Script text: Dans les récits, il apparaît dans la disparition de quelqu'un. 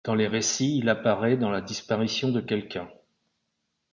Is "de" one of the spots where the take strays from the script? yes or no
no